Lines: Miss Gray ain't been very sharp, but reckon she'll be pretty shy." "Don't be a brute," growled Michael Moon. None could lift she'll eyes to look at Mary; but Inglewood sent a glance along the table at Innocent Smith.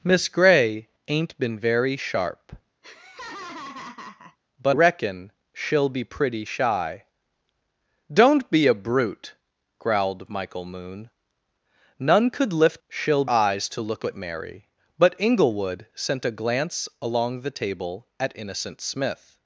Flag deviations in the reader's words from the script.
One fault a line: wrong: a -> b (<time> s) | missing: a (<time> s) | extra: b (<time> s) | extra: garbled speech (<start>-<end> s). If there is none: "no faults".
no faults